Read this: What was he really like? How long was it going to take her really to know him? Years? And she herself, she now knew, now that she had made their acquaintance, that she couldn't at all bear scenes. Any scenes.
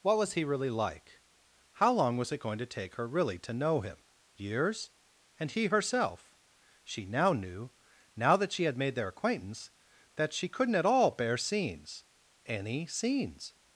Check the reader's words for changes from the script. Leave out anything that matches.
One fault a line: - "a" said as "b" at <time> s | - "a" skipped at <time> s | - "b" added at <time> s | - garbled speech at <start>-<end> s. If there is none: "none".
- "she" said as "he" at 5.5 s